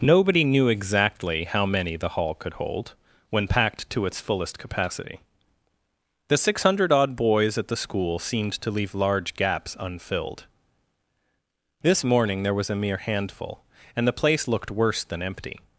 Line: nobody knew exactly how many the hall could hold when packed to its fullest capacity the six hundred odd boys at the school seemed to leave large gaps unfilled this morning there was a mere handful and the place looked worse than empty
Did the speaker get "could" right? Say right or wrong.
right